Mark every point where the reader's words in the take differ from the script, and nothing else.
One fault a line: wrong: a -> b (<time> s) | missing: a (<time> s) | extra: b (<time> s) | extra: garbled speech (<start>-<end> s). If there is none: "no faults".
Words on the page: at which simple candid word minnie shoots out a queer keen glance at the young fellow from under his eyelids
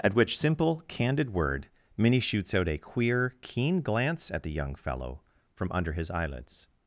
no faults